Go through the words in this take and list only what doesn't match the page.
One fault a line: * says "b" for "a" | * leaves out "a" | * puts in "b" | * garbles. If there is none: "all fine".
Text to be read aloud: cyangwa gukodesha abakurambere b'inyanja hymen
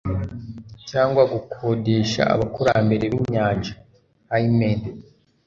all fine